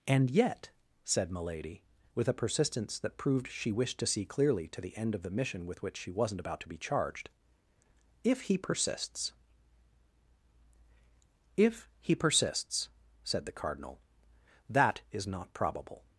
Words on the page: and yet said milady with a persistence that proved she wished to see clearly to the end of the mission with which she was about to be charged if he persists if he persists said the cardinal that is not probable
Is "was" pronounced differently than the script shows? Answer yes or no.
yes